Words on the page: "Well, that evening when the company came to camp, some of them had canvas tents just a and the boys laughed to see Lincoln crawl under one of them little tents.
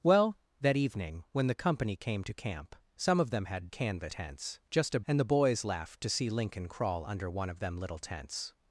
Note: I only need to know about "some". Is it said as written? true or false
true